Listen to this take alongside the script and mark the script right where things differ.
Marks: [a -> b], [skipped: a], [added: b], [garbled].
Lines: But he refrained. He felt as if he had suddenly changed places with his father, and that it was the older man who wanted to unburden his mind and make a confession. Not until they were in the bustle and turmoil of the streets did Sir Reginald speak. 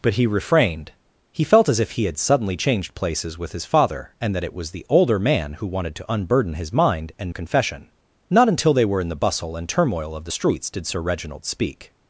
But he refrained. He felt as if he had suddenly changed places with his father, and that it was the older man who wanted to unburden his mind and [skipped: make] a confession. Not until they were in the bustle and turmoil of the streets did Sir Reginald speak.